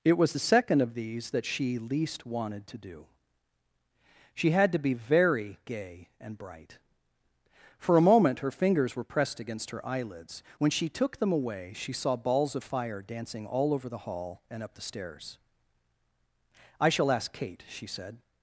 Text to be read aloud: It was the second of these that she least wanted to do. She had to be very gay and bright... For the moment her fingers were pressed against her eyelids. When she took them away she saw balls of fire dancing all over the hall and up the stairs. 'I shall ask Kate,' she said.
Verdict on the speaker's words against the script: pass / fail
fail